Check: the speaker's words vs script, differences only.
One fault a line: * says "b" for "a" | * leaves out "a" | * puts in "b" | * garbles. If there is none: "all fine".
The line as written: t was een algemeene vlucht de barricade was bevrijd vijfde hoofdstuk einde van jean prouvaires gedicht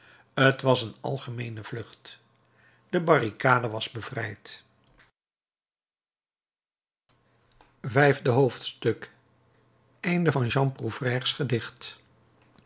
all fine